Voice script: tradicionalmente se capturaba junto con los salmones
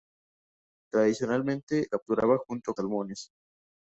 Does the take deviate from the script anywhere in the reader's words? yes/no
yes